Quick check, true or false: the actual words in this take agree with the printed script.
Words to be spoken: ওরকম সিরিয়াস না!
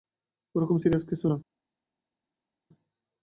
false